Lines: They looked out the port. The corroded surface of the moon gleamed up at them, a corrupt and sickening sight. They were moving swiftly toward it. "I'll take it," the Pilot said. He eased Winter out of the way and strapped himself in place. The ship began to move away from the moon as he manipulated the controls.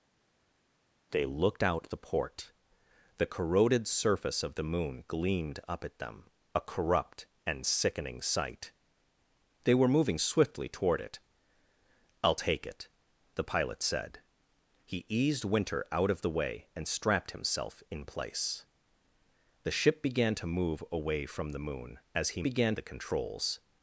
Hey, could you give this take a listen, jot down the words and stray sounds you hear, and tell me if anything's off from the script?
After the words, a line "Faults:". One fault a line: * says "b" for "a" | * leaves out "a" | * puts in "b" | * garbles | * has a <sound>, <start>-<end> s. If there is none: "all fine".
They looked out the port. The corroded surface of the moon gleamed up at them, a corrupt and sickening sight. They were moving swiftly toward it. "I'll take it," the Pilot said. He eased Winter out of the way and strapped himself in place. The ship began to move away from the moon as he began the controls.
Faults:
* says "began" for "manipulated"